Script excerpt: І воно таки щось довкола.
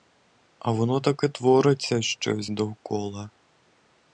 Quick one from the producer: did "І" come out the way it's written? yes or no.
no